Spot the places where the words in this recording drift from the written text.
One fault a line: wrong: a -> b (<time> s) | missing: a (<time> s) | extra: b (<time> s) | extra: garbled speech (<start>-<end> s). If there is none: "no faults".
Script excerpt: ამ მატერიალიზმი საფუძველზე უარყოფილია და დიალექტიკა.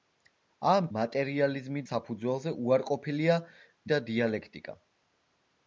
no faults